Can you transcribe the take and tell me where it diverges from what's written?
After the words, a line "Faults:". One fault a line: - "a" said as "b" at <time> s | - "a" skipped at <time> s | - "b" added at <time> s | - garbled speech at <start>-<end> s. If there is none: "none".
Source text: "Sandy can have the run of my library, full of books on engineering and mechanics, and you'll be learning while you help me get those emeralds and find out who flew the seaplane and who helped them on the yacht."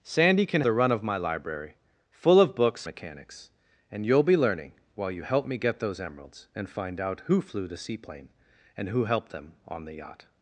"Sandy can the run of my library, full of books mechanics, and you'll be learning while you help me get those emeralds and find out who flew the seaplane and who helped them on the yacht."
Faults:
- "have" skipped at 0.6 s
- "on engineering and" skipped at 2.9 s